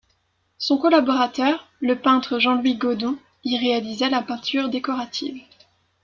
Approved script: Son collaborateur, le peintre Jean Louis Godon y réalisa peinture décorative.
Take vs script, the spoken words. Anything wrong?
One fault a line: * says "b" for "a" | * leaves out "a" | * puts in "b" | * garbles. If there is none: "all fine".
* puts in "la"